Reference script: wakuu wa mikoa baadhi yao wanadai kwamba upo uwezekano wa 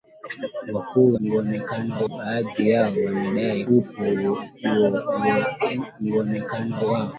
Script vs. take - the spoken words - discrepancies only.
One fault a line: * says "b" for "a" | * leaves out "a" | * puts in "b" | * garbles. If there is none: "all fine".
* says "uwezekano" for "mikoa"
* leaves out "kwamba"